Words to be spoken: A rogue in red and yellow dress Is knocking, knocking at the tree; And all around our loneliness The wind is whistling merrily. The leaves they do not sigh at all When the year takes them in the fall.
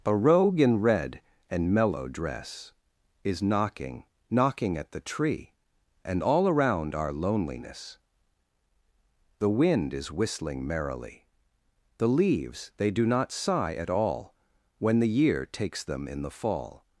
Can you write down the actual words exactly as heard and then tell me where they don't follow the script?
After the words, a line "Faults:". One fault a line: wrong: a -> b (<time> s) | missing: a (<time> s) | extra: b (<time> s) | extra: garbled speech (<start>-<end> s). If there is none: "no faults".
A rogue in red and mellow dress Is knocking, knocking at the tree; And all around our loneliness The wind is whistling merrily. The leaves they do not sigh at all When the year takes them in the fall.
Faults:
wrong: yellow -> mellow (1.7 s)